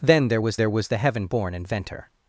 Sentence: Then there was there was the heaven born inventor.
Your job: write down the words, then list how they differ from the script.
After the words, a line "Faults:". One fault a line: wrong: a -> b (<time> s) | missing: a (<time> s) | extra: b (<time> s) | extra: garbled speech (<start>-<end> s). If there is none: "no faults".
Then there was there was the heaven born inventor.
Faults:
no faults